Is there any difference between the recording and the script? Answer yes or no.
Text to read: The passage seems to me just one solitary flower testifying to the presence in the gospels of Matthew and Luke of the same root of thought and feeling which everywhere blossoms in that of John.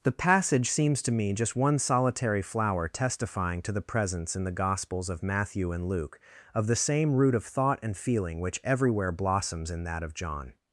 no